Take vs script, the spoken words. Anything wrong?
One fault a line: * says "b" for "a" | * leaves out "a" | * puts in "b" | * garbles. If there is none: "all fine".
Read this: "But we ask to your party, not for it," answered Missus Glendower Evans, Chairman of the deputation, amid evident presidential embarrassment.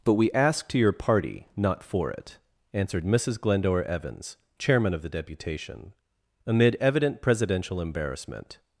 all fine